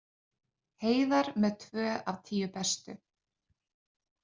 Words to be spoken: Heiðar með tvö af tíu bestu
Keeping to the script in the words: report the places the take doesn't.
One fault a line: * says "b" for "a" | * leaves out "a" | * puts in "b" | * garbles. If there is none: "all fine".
all fine